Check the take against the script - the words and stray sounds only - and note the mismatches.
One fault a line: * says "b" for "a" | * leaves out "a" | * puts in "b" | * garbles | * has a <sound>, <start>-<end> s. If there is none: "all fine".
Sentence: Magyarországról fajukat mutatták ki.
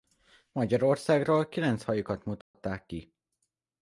* puts in "kilenc"
* has a dropout, 2.4-2.5 s